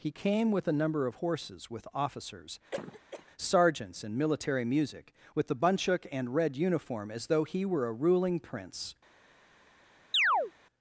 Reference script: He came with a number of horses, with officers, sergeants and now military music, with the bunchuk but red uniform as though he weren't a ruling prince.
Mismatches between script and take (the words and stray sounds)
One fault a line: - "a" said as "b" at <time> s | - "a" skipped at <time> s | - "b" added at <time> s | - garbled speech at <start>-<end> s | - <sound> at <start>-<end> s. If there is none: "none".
- cough at 2.7-3.3 s
- "now" skipped at 4.2 s
- "but" said as "and" at 6.1 s
- "weren't" said as "were" at 7.6 s
- chirp at 10.1-10.5 s